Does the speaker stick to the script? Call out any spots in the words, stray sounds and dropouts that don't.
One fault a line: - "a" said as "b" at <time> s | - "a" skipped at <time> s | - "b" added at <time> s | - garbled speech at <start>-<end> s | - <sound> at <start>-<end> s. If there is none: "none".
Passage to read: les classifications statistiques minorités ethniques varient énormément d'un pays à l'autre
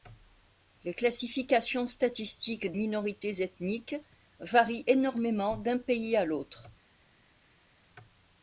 none